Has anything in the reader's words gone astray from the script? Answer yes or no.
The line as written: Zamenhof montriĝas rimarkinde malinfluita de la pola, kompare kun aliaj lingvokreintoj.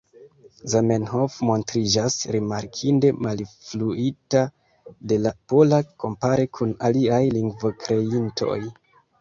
no